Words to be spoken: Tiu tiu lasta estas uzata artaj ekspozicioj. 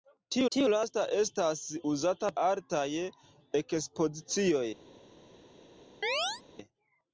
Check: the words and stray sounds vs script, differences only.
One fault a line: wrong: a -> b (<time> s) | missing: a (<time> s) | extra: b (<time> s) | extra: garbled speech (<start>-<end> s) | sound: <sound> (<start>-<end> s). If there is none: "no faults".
sound: chirp (6.0-6.4 s)